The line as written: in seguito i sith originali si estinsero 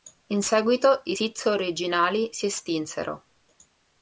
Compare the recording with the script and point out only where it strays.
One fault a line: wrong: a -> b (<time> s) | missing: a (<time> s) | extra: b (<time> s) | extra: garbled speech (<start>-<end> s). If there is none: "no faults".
no faults